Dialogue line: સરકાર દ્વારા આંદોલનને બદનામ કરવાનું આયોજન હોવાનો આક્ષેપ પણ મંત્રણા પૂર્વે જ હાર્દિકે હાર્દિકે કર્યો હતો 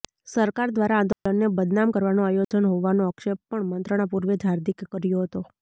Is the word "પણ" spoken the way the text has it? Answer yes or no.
yes